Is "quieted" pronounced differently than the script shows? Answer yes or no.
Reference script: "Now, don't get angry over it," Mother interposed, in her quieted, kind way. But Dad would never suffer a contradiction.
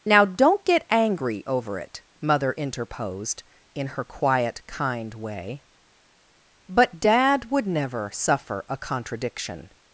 yes